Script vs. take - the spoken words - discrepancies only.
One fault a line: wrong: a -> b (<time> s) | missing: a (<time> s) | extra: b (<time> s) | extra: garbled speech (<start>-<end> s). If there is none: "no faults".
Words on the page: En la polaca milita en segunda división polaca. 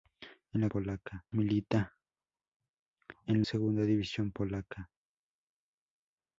no faults